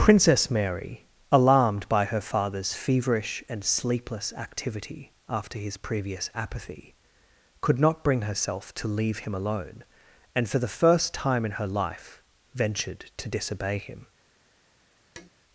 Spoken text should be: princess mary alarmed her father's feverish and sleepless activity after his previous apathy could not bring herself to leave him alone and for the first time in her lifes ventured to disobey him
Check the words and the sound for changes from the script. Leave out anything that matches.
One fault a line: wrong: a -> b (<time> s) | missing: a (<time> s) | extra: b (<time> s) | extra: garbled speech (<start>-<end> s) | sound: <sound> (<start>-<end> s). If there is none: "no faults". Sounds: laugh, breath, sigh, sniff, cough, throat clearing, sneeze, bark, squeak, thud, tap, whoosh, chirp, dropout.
extra: by (1.9 s)
wrong: lifes -> life (11.7 s)
sound: tap (15.2-15.3 s)